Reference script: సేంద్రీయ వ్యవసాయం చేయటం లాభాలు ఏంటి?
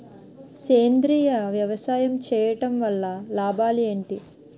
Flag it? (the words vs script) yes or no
yes